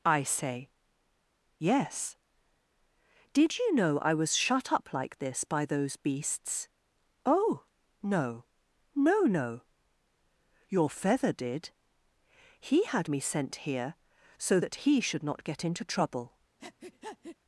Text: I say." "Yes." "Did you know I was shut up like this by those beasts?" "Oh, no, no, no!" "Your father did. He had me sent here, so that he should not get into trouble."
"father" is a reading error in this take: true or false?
true